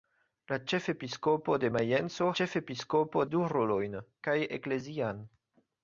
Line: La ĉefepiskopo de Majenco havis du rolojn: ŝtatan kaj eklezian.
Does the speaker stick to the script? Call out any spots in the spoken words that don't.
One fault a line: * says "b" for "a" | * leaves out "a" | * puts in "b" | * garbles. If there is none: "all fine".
* says "ĉefepiskopo" for "havis"
* leaves out "ŝtatan"